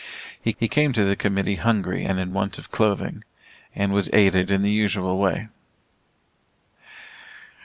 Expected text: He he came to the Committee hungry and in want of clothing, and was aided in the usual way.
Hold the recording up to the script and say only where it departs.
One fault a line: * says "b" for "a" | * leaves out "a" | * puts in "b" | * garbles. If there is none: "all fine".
all fine